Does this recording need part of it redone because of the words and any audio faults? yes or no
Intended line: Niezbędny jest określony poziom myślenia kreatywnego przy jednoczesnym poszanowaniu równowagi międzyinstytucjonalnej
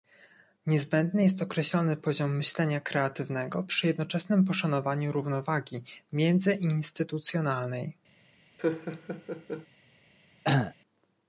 yes